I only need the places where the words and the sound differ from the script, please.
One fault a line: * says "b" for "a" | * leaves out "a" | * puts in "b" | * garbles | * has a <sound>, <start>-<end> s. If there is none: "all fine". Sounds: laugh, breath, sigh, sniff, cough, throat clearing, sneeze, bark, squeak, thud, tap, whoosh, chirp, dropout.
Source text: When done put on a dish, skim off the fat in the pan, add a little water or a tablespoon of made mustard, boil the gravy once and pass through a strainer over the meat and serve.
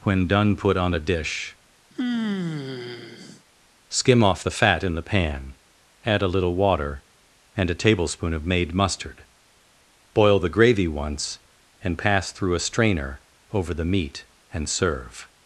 * has a sigh, 1.9-3.4 s
* says "and" for "or"